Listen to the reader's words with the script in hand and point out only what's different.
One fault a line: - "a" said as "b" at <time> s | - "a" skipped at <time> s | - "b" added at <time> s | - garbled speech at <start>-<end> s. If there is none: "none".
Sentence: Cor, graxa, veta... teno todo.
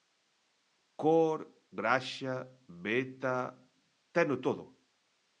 none